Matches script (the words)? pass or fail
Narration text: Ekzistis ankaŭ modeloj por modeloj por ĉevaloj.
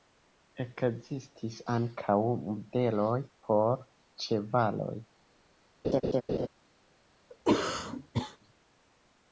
fail